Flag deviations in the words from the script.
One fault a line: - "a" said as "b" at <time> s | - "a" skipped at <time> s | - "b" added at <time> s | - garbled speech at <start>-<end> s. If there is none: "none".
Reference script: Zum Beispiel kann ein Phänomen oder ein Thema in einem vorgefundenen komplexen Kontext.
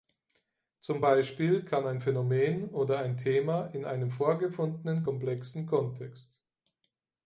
none